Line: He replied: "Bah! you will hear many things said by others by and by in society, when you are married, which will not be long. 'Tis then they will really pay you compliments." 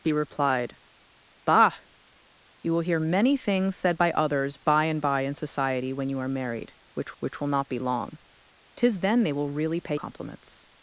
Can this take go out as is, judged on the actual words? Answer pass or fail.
fail